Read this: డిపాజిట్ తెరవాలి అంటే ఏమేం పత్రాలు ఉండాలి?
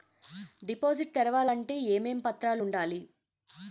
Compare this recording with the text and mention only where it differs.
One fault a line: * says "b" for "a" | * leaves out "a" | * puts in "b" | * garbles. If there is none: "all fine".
all fine